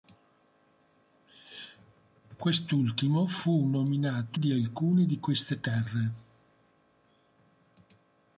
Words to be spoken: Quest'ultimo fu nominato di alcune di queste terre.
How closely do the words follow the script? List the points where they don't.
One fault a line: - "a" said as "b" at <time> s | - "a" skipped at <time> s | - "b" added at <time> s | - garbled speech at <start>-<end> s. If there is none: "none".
none